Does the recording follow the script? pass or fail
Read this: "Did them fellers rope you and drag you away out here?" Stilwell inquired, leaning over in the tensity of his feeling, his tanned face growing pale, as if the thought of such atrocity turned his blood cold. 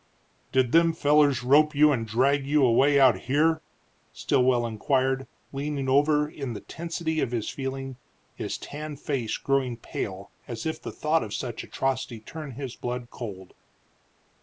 pass